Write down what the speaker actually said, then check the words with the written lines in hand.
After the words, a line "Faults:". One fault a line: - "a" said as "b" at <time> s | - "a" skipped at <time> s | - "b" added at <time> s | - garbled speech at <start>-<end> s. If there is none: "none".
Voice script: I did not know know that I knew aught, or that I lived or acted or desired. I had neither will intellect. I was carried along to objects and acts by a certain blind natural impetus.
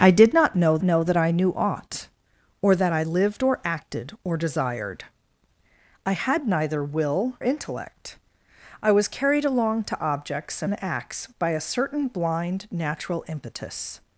I did not know know that I knew aught, or that I lived or acted or desired. I had neither will intellect. I was carried along to objects and acts by a certain blind natural impetus.
Faults:
none